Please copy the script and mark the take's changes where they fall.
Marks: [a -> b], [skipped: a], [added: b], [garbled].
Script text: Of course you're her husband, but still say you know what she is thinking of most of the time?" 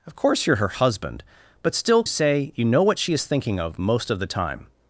Of course you're her husband, but still say you know what she is thinking of most of the time?"